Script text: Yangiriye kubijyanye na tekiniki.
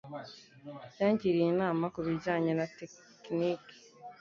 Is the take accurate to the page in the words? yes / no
no